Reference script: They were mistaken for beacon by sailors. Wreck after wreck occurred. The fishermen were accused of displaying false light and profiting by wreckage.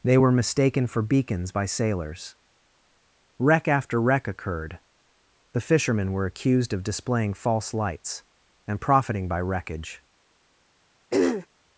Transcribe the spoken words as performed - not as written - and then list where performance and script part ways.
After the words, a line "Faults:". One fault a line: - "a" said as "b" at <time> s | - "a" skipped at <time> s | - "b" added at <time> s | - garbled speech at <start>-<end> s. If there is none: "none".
They were mistaken for beacons by sailors. Wreck after wreck occurred. The fishermen were accused of displaying false lights and profiting by wreckage.
Faults:
- "beacon" said as "beacons" at 1.0 s
- "light" said as "lights" at 7.7 s